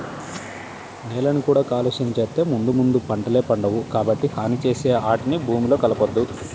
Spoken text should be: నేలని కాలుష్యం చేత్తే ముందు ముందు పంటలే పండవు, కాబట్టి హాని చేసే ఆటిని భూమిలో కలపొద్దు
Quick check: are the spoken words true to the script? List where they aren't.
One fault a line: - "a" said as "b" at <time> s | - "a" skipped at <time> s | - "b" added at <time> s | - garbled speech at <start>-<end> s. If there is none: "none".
- "కూడా" added at 1.5 s